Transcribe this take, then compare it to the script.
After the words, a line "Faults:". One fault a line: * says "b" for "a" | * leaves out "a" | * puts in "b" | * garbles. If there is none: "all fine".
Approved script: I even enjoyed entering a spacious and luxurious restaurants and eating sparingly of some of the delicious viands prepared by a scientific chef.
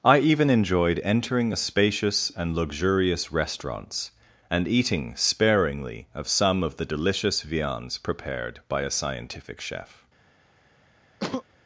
I even enjoyed entering a spacious and luxurious restaurants and eating sparingly of some of the delicious viands prepared by a scientific chef.
Faults:
all fine